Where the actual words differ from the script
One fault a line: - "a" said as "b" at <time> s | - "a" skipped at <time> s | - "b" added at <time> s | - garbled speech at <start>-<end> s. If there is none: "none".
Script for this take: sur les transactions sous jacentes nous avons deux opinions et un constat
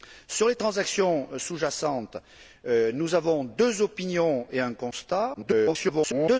- garbled speech at 5.3-6.4 s